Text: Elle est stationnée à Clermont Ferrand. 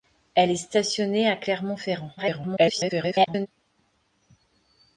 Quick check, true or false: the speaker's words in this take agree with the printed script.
false